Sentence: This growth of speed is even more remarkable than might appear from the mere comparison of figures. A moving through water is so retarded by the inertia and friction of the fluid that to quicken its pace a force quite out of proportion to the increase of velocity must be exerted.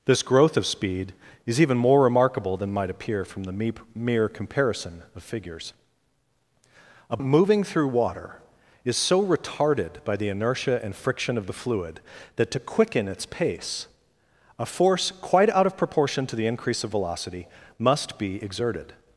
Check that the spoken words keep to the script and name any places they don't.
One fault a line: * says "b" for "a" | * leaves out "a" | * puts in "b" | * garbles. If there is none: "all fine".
all fine